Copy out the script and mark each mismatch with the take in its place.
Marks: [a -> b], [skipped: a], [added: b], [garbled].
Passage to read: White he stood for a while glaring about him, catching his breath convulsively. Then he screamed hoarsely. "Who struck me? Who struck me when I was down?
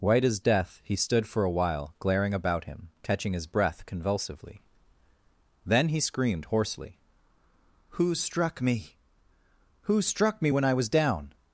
White [added: as death] he stood for a while glaring about him, catching his breath convulsively. Then he screamed hoarsely. "Who struck me? Who struck me when I was down?